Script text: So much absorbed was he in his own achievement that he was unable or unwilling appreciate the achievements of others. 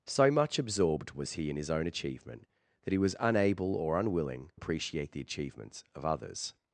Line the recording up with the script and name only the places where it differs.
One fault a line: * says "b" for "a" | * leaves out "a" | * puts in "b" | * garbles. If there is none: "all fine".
all fine